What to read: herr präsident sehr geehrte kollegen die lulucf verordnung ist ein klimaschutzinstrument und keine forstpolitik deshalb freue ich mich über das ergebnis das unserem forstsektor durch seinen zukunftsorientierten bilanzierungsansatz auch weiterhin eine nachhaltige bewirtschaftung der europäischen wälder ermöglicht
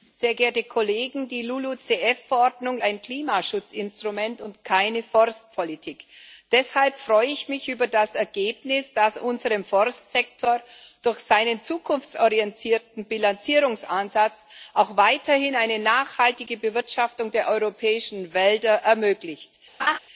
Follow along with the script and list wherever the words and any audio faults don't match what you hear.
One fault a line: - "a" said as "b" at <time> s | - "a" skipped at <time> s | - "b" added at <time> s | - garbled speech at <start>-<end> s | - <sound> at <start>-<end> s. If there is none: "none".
- "ist" skipped at 2.8 s
- laugh at 19.8-20.0 s